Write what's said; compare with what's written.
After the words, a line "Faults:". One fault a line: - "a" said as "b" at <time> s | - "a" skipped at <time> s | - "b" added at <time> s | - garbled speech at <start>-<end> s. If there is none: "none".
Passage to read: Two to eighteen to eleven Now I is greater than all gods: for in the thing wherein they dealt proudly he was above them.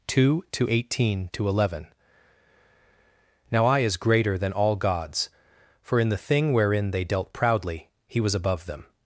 Two to eighteen to eleven Now I is greater than all gods: for in the thing wherein they dealt proudly he was above them.
Faults:
none